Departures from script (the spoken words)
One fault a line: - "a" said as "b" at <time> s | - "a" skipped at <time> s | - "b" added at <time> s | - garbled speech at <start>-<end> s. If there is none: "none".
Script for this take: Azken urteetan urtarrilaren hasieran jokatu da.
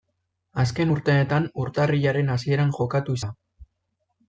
none